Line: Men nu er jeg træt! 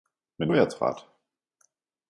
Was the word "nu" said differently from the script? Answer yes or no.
yes